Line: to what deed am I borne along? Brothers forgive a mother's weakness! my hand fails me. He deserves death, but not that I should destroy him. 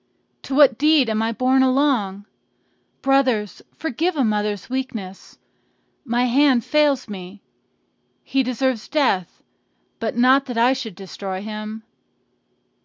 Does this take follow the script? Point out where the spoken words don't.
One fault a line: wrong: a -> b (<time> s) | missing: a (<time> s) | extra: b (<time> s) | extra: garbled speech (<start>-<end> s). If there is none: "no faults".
no faults